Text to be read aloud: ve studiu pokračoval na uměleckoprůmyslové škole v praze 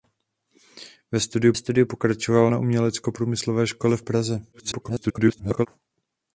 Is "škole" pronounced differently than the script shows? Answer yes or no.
no